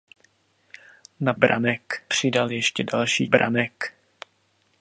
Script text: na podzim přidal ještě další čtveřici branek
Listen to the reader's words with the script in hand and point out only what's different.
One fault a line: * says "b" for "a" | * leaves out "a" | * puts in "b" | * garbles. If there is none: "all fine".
* says "branek" for "podzim"
* leaves out "čtveřici"